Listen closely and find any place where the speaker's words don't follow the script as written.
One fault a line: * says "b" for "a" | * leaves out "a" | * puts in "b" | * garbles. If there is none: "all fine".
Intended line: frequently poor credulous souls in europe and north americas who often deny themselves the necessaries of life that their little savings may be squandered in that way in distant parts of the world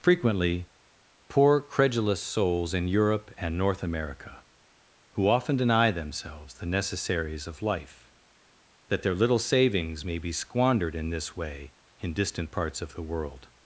* says "america" for "americas"
* says "this" for "that"